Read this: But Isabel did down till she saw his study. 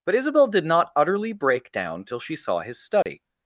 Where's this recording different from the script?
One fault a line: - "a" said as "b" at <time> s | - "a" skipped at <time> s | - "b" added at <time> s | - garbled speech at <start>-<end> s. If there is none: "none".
- "not utterly break" added at 0.7 s